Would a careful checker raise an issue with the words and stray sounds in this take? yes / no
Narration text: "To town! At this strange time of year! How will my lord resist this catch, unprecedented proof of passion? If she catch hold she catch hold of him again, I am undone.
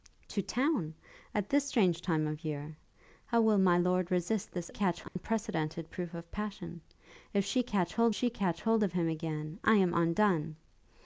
yes